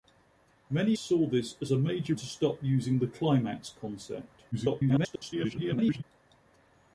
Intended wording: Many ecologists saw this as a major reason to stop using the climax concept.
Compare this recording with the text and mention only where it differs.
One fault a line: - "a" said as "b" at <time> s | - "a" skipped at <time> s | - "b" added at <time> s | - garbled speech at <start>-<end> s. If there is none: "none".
- "ecologists" skipped at 0.9 s
- "reason" skipped at 2.1 s
- garbled speech at 4.5-6.0 s